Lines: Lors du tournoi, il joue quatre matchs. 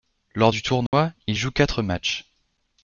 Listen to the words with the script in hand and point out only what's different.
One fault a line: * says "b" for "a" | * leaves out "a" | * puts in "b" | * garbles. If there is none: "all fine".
all fine